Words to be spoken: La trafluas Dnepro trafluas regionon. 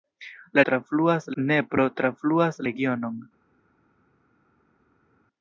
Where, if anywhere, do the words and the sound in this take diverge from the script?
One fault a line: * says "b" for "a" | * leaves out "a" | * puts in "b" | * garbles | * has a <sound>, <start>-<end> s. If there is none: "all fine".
all fine